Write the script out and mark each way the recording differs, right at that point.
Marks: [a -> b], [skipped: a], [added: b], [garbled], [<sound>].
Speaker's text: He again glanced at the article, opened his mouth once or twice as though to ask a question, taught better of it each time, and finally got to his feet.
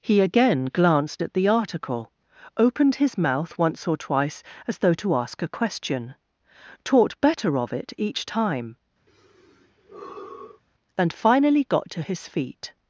He again glanced at the article, opened his mouth once or twice as though to ask a question, taught better of it each time, [sigh] and finally got to his feet.